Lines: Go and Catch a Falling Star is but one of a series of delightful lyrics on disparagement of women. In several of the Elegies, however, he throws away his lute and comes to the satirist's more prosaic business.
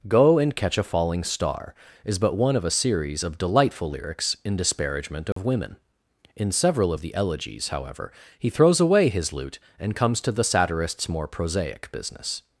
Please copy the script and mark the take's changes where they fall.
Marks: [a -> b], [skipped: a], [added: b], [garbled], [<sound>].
Go and Catch a Falling Star is but one of a series of delightful lyrics [on -> in] disparagement of [dropout] women. In several of the Elegies, however, he throws away his lute and comes to the satirist's more prosaic business.